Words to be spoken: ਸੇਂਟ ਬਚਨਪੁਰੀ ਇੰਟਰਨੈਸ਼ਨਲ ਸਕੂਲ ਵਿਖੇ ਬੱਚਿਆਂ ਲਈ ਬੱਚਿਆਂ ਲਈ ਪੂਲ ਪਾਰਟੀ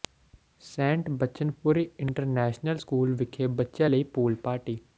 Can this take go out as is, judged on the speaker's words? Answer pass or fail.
fail